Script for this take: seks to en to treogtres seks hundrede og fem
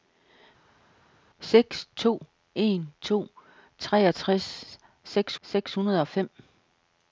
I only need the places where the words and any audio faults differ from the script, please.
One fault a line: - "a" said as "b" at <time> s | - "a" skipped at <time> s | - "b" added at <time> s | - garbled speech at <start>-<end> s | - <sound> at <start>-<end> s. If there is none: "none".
- "seks" added at 5.4 s